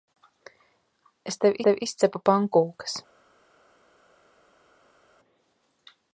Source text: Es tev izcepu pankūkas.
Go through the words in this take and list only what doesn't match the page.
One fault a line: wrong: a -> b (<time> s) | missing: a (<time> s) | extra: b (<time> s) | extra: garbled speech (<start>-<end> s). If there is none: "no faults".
extra: tev (1.7 s)